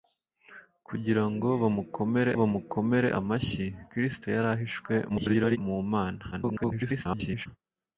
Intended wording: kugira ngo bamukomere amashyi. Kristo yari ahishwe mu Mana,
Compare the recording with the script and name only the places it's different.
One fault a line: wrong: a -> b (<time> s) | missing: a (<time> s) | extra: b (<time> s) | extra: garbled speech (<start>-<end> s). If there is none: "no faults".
extra: bamukomere (2.4 s)
extra: garbled speech (5.1-5.6 s)
extra: garbled speech (6.3-7.5 s)